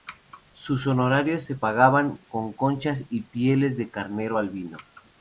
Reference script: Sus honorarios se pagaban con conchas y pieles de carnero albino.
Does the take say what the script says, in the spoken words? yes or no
yes